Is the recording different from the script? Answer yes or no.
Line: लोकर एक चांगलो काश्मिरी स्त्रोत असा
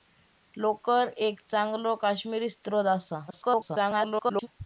yes